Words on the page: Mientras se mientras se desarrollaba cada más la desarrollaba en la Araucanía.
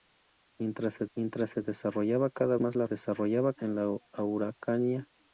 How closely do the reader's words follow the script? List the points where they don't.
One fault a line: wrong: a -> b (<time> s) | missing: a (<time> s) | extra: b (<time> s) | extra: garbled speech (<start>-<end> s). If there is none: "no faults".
no faults